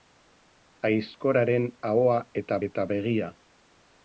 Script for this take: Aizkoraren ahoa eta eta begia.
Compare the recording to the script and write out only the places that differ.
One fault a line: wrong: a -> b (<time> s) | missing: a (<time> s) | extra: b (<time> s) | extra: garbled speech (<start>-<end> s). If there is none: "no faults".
no faults